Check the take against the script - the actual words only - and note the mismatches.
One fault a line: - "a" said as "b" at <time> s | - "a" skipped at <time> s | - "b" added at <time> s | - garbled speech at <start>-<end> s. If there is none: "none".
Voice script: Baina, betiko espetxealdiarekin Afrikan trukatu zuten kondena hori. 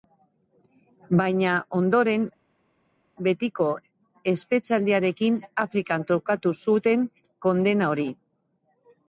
- "ondoren" added at 1.8 s